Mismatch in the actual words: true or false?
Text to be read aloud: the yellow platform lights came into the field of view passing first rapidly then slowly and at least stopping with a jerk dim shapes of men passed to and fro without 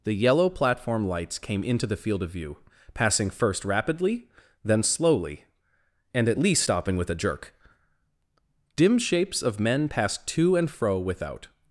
false